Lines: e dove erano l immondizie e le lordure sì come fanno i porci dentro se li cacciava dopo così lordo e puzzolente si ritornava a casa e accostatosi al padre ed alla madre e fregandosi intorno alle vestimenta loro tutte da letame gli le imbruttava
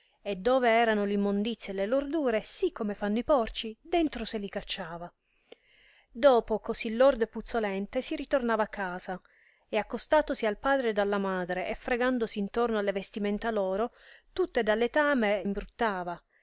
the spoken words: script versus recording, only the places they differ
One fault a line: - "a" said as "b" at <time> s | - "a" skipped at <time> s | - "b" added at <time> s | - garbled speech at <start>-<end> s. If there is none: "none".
- "gli le" skipped at 15.4 s